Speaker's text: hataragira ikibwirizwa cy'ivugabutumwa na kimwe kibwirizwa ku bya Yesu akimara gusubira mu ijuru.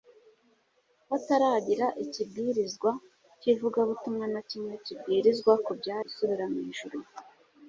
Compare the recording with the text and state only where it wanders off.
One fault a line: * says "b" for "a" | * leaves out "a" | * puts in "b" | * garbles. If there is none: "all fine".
* leaves out "Yesu akimara"